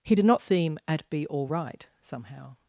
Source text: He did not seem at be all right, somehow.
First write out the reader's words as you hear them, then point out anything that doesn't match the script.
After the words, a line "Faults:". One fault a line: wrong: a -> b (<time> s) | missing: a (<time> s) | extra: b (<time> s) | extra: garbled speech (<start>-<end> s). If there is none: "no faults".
He did not seem at be all right, somehow.
Faults:
no faults